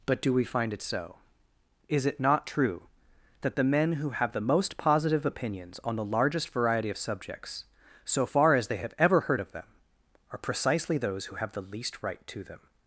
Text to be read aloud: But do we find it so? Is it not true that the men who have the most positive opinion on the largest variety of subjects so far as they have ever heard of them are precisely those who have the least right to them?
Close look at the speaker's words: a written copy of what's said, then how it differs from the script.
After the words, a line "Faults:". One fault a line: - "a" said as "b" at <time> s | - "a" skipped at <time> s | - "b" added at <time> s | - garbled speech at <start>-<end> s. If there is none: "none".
But do we find it so? Is it not true that the men who have the most positive opinions on the largest variety of subjects so far as they have ever heard of them are precisely those who have the least right to them?
Faults:
- "opinion" said as "opinions" at 5.2 s